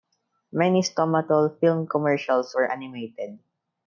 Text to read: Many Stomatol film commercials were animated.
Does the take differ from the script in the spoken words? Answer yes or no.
no